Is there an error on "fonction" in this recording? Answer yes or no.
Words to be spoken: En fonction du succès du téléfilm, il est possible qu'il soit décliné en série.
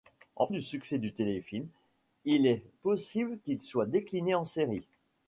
yes